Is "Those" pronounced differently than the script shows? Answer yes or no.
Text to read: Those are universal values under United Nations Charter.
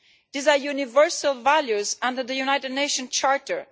yes